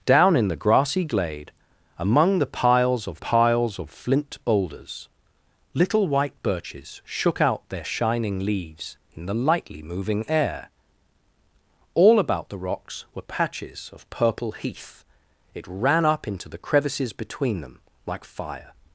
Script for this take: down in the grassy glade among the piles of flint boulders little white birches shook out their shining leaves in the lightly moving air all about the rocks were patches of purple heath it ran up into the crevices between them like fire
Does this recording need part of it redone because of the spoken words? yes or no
yes